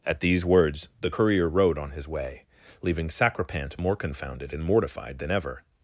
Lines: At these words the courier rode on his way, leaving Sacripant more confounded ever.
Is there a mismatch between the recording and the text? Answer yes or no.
yes